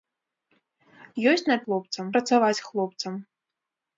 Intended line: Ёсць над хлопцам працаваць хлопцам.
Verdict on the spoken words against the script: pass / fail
pass